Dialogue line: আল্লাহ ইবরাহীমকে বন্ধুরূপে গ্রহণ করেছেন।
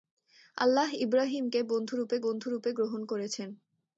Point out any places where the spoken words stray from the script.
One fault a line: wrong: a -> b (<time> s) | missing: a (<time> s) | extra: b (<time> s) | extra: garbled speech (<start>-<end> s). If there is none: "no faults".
extra: বন্ধুরূপে (2.2 s)